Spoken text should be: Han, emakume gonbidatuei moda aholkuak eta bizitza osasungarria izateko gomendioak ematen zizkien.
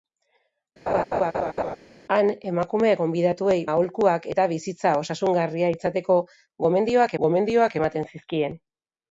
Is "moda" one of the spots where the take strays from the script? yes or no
yes